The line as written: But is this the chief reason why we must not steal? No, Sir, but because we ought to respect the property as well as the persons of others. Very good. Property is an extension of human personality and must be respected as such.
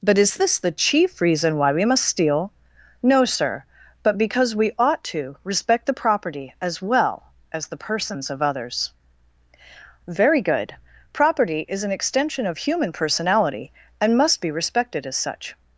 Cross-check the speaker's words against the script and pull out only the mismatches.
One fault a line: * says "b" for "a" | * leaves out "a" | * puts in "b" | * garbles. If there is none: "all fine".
* leaves out "not"